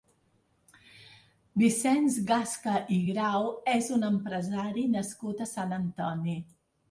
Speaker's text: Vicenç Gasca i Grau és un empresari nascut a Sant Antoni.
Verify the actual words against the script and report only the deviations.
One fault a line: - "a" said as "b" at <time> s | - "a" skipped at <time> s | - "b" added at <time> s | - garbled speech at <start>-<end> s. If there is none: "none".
none